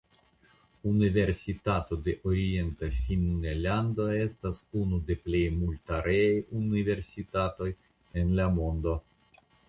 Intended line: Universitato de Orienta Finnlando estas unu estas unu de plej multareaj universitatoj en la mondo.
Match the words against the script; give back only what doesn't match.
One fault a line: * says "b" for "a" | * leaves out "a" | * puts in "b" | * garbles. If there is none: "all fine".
* leaves out "estas unu"